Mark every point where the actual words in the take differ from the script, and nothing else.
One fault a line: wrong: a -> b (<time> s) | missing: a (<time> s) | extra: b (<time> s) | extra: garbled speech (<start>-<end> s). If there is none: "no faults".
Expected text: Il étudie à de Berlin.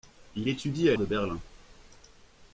no faults